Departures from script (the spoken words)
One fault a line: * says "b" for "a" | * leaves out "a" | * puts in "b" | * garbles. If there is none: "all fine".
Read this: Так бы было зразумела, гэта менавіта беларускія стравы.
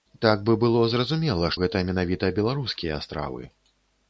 all fine